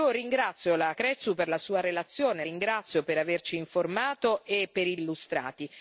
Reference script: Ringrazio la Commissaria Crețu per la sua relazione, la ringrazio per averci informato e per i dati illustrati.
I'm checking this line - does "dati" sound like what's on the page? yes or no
no